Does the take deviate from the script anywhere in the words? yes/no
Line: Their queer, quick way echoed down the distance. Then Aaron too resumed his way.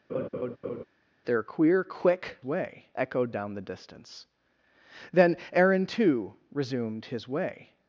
no